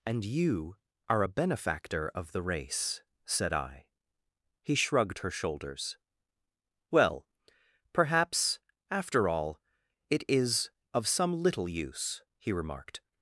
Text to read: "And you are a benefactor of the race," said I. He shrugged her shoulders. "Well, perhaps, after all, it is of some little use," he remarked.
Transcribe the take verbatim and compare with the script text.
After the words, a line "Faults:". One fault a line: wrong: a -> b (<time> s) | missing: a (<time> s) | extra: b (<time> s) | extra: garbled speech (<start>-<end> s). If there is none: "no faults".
"And you are a benefactor of the race," said I. He shrugged her shoulders. "Well, perhaps, after all, it is of some little use," he remarked.
Faults:
no faults